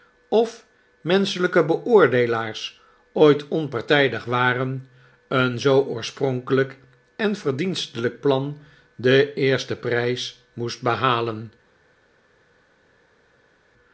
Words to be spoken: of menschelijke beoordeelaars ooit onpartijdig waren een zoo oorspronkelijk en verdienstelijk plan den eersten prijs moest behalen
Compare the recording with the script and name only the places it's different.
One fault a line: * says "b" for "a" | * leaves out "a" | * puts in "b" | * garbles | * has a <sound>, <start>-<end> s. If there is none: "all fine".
all fine